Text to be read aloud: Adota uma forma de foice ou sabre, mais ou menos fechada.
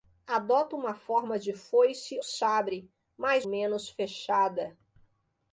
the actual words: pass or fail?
fail